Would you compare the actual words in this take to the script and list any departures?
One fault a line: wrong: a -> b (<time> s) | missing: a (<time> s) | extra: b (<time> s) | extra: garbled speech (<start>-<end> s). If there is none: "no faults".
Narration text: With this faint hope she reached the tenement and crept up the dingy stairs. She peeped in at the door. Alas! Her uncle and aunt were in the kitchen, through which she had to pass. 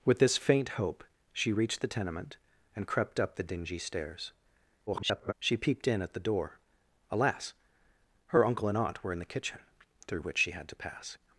extra: garbled speech (4.9-5.3 s)